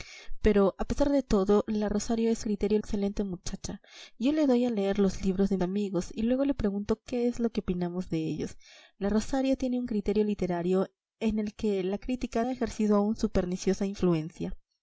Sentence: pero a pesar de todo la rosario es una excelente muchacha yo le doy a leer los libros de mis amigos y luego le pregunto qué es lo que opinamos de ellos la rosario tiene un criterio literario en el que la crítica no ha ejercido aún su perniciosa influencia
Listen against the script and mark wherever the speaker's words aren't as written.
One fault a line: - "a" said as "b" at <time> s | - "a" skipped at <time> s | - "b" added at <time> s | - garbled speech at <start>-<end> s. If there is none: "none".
- "una" said as "criterio" at 2.4 s
- "mis" skipped at 5.6 s
- "no" skipped at 12.4 s